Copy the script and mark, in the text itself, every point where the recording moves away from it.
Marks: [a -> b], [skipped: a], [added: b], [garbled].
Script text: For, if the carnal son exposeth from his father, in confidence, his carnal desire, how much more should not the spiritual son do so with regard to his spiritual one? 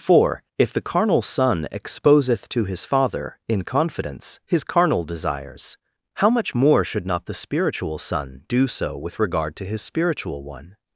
For, if the carnal son exposeth [from -> to] his father, in confidence, his carnal [desire, -> desires] how much more should not the spiritual son do so with regard to his spiritual one?